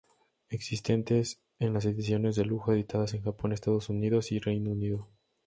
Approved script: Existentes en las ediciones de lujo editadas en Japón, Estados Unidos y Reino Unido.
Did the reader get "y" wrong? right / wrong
right